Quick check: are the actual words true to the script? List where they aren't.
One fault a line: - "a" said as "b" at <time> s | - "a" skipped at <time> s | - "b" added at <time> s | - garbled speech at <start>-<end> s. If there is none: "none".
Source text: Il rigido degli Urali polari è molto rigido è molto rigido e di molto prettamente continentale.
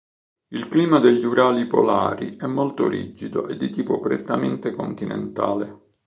- "rigido" said as "clima" at 0.7 s
- "è molto rigido" skipped at 3.5 s
- "molto" said as "tipo" at 3.7 s